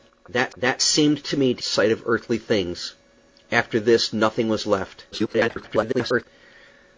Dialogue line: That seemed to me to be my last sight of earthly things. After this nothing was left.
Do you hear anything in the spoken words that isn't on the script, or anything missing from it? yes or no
yes